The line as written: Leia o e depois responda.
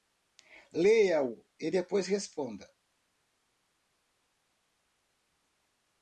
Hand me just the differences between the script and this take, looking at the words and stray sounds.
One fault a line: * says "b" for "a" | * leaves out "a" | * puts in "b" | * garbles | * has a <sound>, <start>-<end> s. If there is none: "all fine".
all fine